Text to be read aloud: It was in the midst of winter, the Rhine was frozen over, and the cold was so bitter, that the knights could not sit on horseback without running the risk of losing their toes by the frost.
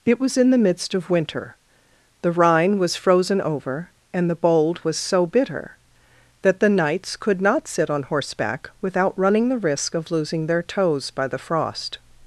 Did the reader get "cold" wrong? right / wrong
wrong